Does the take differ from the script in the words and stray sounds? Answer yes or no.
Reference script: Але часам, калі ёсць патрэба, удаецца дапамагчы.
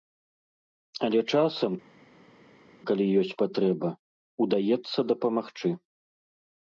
no